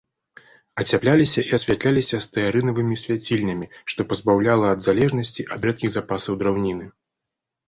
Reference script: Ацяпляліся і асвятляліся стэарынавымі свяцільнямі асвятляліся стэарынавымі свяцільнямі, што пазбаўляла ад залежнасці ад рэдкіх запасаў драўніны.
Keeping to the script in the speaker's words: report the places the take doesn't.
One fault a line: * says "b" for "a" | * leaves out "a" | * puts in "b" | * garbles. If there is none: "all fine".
* leaves out "асвятляліся стэарынавымі свяцільнямі"